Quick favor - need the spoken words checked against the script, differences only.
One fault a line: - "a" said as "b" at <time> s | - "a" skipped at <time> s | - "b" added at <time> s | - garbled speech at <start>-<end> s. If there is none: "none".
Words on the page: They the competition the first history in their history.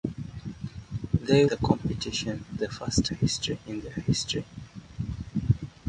none